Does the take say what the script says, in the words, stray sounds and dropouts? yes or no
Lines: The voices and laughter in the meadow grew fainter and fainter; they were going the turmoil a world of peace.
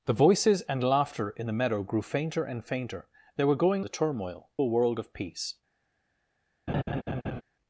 no